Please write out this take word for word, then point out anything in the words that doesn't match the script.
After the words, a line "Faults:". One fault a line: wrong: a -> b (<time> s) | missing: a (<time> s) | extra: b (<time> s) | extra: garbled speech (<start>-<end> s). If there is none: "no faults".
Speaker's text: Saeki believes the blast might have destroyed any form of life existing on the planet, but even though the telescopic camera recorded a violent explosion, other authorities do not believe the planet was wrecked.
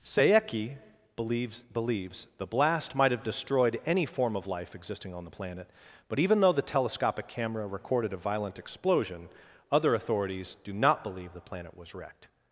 Saeki believes believes the blast might have destroyed any form of life existing on the planet, but even though the telescopic camera recorded a violent explosion, other authorities do not believe the planet was wrecked.
Faults:
extra: believes (1.6 s)